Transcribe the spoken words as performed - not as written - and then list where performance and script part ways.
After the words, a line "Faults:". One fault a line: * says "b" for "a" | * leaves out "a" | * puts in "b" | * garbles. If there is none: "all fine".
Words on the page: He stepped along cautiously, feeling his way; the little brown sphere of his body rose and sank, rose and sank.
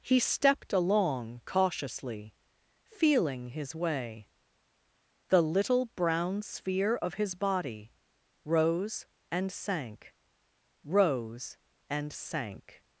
He stepped along cautiously, feeling his way; the little brown sphere of his body rose and sank, rose and sank.
Faults:
all fine